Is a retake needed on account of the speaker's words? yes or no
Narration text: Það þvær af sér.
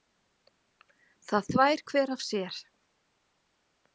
yes